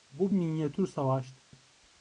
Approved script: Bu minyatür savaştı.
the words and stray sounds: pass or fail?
fail